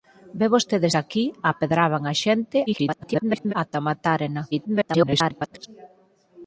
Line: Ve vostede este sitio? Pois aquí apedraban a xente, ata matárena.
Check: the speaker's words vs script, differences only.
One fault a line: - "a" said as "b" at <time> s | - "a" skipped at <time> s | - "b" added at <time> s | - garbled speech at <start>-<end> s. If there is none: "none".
- "este sitio Pois" skipped at 0.9 s
- garbled speech at 2.7-3.5 s
- garbled speech at 4.5-5.7 s